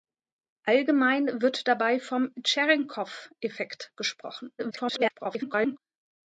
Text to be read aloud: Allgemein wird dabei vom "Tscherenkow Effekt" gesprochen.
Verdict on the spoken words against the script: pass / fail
fail